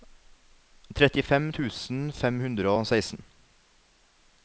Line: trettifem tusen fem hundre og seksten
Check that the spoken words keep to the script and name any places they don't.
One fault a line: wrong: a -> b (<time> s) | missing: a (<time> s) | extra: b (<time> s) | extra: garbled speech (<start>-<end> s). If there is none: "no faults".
no faults